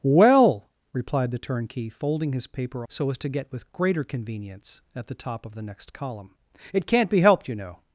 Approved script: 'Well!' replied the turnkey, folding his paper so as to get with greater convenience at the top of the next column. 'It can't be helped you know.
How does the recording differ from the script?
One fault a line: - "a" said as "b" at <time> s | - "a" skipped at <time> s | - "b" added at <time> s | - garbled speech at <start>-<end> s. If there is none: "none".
none